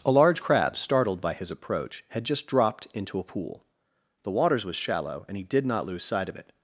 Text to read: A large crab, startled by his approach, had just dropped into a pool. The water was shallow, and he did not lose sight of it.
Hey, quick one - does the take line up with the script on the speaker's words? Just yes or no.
no